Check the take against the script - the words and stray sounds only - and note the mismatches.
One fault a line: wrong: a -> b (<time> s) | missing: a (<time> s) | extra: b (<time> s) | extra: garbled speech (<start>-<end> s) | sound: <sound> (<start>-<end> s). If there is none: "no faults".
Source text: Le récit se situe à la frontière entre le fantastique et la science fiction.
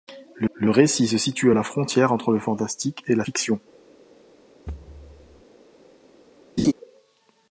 extra: le (0.5 s)
missing: science (3.2 s)
sound: thud (4.7-5.4 s)
sound: laugh (6.6-6.7 s)